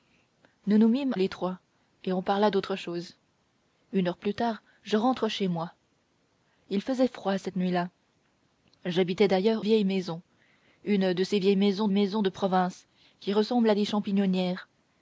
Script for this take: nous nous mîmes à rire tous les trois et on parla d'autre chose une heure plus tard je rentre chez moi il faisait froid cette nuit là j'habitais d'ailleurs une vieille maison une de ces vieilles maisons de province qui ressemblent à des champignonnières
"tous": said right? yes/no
no